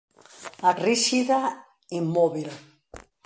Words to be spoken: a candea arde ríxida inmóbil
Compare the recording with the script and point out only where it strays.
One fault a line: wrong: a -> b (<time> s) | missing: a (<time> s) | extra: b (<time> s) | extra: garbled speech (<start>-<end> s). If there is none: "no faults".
missing: candea arde (0.7 s)